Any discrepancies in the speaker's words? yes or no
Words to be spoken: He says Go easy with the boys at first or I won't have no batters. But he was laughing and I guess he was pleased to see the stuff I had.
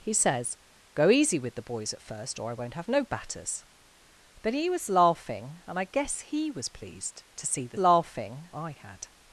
yes